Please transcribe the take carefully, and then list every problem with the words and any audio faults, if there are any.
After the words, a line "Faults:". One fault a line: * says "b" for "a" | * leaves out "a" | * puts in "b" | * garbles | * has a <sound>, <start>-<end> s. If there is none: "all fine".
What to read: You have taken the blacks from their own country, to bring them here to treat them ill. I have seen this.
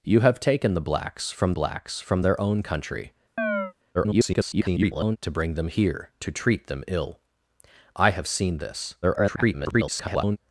You have taken the blacks from blacks from their own country, [garbled] to bring them here to treat them ill. I have seen this. [garbled]
Faults:
* puts in "blacks from"
* has a chirp, 3.4-3.7 s
* garbles
* garbles